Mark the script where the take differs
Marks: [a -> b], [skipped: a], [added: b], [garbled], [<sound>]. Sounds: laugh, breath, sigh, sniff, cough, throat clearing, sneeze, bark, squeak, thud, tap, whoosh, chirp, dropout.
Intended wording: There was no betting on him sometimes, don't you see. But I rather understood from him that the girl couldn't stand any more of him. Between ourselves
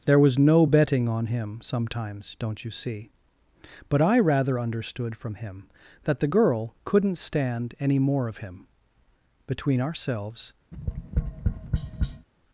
There was no betting on him sometimes, don't you see. But I rather understood from him that the girl couldn't stand any more of him. Between ourselves [tap]